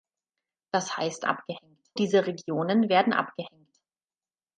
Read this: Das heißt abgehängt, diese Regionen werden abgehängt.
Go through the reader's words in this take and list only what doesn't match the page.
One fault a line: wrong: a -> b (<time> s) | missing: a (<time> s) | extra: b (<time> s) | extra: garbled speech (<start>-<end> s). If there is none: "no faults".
no faults